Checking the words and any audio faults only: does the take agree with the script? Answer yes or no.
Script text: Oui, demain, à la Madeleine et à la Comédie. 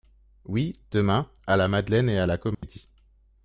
no